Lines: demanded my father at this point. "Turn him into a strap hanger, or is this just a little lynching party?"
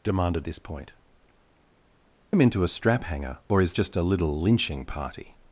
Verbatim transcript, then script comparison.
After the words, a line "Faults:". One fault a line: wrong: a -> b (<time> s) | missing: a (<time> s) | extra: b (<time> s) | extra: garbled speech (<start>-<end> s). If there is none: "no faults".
demanded this point. "Him into a strap hanger, or is just a little lynching party?"
Faults:
missing: my father at (0.5 s)
missing: Turn (0.9 s)
missing: this (3.7 s)